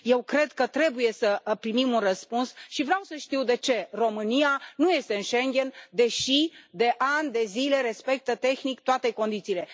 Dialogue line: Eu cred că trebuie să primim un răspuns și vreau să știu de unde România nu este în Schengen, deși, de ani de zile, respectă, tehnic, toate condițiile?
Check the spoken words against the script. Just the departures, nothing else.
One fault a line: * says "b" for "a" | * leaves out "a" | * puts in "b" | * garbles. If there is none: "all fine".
* says "ce" for "unde"